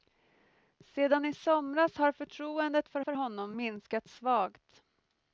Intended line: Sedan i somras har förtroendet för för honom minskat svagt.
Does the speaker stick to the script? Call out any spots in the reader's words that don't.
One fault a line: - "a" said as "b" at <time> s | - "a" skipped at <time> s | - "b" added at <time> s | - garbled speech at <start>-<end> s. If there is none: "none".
none